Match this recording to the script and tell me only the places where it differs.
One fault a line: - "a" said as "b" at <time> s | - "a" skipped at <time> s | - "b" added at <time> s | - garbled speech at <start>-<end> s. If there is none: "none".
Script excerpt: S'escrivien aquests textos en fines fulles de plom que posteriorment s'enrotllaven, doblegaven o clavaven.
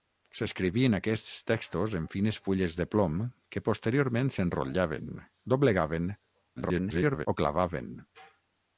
- garbled speech at 6.6-7.3 s